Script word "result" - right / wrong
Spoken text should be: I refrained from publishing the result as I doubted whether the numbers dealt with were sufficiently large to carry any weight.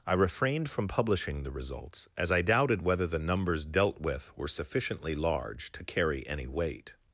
wrong